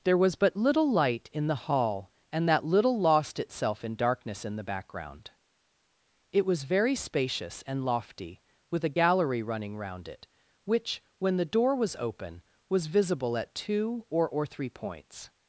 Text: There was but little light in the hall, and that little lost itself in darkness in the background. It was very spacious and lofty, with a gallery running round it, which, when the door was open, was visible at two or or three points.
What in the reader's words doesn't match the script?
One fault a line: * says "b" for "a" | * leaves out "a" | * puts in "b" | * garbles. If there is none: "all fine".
all fine